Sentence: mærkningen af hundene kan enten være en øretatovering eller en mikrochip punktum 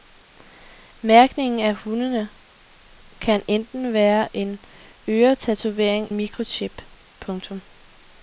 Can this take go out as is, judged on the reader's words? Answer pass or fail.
fail